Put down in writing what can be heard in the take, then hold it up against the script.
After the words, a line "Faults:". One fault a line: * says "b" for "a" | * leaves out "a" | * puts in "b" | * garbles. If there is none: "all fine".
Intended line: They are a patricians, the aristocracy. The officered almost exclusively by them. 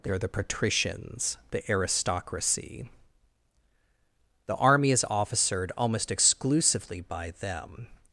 They are the patricians, the aristocracy. The army is officered almost exclusively by them.
Faults:
* says "the" for "a"
* puts in "army is"